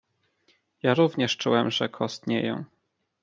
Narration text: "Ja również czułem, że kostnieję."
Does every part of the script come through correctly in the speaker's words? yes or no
yes